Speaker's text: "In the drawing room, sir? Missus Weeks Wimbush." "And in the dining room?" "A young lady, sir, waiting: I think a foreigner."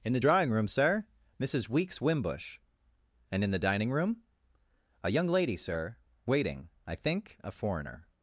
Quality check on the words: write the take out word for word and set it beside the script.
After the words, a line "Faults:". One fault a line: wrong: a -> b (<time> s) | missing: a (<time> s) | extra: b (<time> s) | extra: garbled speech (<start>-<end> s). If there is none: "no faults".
"In the drawing room, sir? Missus Weeks Wimbush." "And in the dining room?" "A young lady, sir, waiting: I think a foreigner."
Faults:
no faults